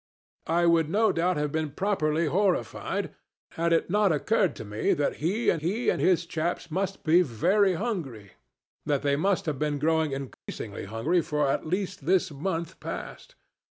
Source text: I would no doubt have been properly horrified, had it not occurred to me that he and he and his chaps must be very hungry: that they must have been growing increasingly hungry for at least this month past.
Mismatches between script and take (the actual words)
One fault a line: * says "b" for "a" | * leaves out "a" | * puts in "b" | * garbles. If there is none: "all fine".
all fine